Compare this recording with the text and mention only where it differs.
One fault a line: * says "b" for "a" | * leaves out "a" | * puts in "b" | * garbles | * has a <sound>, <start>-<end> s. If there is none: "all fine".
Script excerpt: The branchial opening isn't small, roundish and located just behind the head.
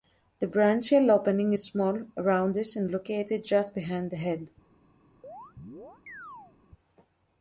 * says "is" for "isn't"
* has a chirp, 5.2-6.5 s